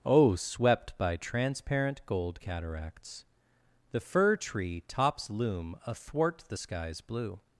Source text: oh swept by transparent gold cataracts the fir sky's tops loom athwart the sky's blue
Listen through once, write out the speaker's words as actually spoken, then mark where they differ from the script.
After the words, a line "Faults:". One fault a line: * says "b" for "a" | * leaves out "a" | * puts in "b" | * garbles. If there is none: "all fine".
oh swept by transparent gold cataracts the fir tree tops loom athwart the sky's blue
Faults:
* says "tree" for "sky's"